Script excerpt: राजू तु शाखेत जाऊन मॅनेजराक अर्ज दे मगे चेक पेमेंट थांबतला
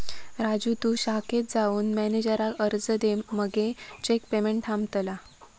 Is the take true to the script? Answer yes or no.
yes